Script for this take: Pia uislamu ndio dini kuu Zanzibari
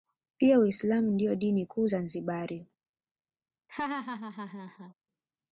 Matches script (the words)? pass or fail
pass